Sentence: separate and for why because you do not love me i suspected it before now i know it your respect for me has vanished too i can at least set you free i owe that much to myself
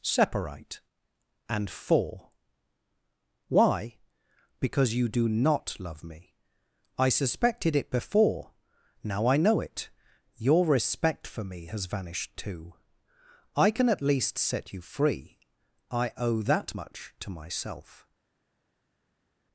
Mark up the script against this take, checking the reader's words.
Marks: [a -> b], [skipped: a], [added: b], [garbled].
separate and for why because you do not love me i suspected it before now i know it your respect for me has vanished too i can at least set you free i owe that much to myself